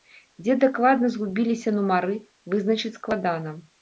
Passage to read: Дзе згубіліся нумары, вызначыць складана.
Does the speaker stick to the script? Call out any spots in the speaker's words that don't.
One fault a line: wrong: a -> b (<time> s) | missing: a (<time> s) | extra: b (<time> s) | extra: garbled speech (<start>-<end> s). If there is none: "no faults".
extra: дакладна (0.6 s)